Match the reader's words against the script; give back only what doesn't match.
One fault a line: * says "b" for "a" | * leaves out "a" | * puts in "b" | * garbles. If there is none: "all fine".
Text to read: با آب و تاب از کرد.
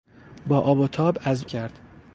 all fine